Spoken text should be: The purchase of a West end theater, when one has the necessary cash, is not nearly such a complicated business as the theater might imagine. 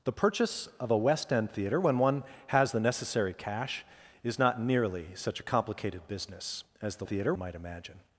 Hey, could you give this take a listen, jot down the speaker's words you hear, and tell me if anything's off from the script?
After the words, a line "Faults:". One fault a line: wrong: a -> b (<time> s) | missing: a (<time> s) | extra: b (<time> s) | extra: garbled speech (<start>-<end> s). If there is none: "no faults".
The purchase of a West end theater, when one has the necessary cash, is not nearly such a complicated business as the theater might imagine.
Faults:
no faults